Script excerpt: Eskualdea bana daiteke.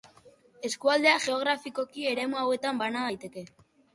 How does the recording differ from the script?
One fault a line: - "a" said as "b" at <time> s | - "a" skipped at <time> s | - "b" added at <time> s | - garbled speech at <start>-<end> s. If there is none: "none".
- "geografikoki eremu hauetan" added at 1.2 s